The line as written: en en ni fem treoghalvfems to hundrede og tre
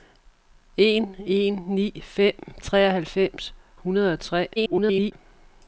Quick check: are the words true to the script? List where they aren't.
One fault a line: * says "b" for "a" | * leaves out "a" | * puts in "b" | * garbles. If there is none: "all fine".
* leaves out "to"
* garbles